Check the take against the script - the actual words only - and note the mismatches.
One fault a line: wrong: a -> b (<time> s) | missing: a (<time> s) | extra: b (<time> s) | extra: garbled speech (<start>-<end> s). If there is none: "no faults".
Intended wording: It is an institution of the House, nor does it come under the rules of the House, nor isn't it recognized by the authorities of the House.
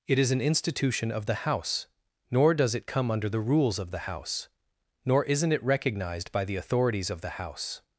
no faults